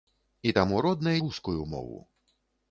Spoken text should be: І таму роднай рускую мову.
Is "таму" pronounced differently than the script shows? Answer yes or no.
no